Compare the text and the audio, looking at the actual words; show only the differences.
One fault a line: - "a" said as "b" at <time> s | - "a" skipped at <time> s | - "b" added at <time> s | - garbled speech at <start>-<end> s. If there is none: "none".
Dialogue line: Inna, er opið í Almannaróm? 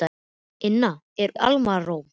- "opið" skipped at 1.4 s